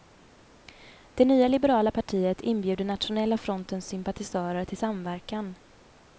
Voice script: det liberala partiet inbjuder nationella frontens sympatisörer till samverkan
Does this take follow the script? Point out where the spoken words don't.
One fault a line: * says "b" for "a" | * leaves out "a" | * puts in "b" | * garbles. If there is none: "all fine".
* puts in "nya"